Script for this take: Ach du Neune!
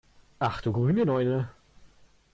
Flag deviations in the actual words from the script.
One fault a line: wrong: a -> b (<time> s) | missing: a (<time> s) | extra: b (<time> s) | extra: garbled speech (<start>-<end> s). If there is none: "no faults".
extra: grüne (0.7 s)